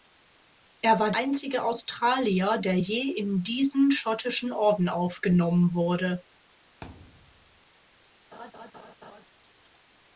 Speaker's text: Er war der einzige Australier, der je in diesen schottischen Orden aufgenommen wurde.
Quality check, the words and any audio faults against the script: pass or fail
fail